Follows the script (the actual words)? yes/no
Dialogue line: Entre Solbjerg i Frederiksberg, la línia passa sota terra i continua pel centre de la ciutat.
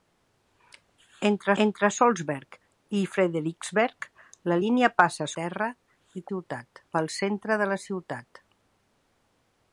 no